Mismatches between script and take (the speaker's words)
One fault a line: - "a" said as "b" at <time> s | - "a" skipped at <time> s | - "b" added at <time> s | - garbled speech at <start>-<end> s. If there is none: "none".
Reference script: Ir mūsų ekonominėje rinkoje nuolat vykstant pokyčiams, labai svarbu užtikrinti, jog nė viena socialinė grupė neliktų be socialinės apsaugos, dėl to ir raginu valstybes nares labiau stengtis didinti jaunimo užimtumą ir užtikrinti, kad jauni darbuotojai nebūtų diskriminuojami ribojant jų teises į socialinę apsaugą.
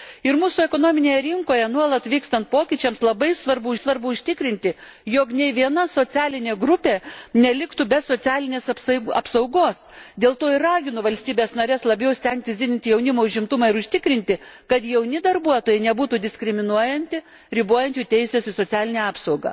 - "svarbu" added at 3.8 s